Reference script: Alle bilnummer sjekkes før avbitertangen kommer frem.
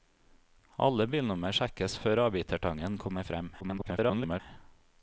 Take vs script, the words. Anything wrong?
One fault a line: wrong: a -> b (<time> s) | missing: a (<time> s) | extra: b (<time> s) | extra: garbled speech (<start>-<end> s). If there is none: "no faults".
extra: garbled speech (3.6-4.4 s)